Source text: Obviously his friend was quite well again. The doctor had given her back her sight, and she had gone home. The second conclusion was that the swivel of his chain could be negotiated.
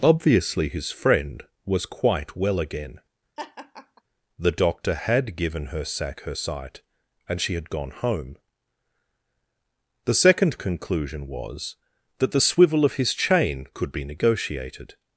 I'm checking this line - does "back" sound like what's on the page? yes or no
no